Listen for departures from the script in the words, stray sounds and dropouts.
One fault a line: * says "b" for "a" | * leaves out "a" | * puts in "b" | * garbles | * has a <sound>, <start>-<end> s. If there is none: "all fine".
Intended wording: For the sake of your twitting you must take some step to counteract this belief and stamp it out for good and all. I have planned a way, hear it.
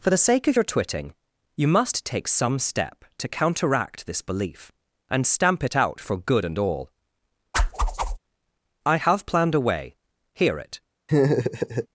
* has a whoosh, 7.5-8.2 s
* has a laugh, 11.1-11.9 s